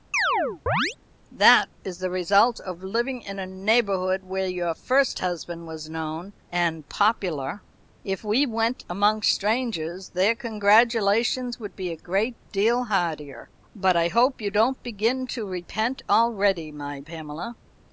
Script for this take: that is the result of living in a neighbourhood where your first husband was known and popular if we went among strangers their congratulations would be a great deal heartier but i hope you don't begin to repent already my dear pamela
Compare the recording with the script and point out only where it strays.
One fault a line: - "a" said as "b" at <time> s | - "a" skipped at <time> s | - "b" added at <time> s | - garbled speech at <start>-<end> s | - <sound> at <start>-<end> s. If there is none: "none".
- chirp at 0.1-1.0 s
- "dear" skipped at 17.0 s